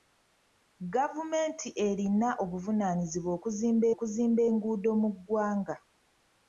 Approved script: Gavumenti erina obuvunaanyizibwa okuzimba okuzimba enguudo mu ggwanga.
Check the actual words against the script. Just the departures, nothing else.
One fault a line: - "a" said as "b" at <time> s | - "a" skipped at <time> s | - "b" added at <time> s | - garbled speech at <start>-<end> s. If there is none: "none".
none